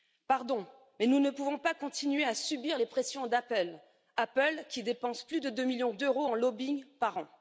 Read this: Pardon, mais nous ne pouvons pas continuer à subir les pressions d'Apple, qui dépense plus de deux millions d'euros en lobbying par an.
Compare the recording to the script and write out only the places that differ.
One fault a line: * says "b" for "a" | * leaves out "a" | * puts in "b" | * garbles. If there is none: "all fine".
all fine